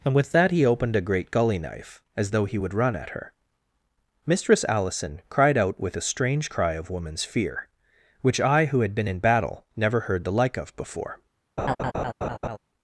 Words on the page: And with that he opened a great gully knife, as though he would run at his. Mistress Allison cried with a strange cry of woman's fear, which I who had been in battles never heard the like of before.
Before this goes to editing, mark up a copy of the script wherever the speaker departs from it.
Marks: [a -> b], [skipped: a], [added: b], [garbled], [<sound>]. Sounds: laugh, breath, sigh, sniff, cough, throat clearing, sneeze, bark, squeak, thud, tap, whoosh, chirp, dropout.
And with that he opened a great gully knife, as though he would run at [his. -> her] Mistress Allison cried [added: out] with a strange cry of woman's fear, which I who had been in [battles -> battle] never heard the like of before. [laugh]